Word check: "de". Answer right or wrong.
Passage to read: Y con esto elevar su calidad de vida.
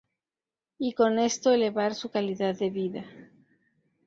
right